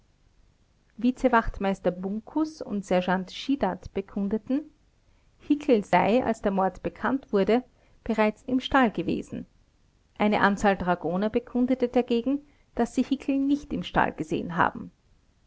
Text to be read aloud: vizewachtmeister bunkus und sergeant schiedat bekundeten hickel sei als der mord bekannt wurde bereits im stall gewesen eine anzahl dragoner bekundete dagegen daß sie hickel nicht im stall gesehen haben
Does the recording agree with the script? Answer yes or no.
yes